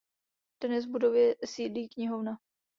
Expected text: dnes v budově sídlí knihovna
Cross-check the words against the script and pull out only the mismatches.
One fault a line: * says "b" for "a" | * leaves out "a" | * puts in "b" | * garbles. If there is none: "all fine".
all fine